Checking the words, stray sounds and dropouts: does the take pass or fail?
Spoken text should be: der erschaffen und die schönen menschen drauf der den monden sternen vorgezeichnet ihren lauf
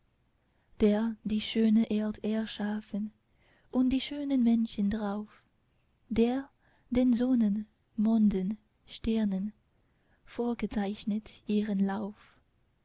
fail